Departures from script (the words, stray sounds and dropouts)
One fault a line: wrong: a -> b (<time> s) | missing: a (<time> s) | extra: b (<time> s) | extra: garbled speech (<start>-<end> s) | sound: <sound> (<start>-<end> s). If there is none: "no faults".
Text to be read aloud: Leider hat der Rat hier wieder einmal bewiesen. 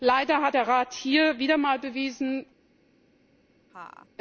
sound: laugh (3.7-4.1 s)